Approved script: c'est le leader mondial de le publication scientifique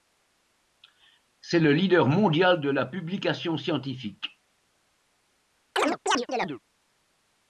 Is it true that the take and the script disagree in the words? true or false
true